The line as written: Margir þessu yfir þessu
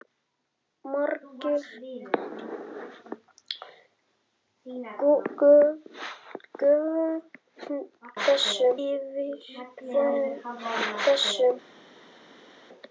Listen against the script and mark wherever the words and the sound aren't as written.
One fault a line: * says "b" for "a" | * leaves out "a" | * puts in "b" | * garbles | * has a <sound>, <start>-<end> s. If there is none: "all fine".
all fine